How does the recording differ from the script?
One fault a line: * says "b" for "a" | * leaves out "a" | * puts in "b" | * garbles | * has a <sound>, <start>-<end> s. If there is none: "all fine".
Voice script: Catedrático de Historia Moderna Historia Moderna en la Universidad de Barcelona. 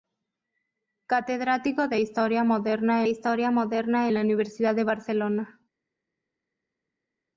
all fine